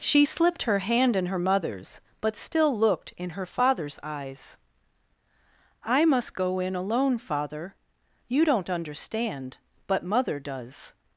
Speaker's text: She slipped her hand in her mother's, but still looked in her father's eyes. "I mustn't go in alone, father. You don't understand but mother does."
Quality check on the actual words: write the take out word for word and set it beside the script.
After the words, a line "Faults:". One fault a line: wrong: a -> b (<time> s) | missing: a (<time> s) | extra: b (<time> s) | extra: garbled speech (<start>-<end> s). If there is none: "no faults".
She slipped her hand in her mother's, but still looked in her father's eyes. "I must go in alone, father. You don't understand but mother does."
Faults:
wrong: mustn't -> must (6.0 s)